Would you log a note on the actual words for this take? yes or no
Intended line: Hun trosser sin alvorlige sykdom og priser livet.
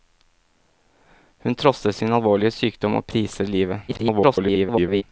yes